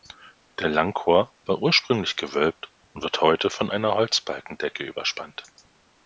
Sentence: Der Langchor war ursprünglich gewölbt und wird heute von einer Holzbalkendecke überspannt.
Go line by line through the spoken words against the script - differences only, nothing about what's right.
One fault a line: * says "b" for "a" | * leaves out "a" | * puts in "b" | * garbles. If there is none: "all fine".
all fine